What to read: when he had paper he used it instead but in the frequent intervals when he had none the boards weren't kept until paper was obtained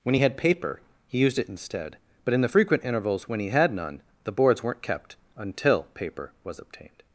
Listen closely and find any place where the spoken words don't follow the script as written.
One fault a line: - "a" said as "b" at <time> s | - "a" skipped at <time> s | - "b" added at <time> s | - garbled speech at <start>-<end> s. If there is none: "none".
none